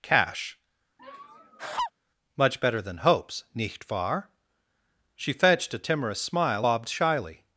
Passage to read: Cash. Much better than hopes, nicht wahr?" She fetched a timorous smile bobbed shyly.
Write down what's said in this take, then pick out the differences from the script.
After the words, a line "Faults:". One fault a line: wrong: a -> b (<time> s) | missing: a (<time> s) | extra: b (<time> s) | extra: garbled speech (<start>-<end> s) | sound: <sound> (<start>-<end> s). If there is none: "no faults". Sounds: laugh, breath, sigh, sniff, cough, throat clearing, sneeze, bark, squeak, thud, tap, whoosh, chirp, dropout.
Cash. Much better than hopes, nicht wahr?" She fetched a timorous smile bobbed shyly.
Faults:
sound: laugh (1.0-1.9 s)